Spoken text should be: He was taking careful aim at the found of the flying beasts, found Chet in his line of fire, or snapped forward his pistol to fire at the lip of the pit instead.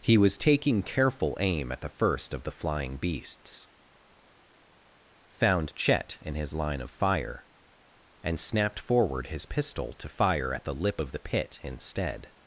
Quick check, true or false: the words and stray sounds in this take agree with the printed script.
false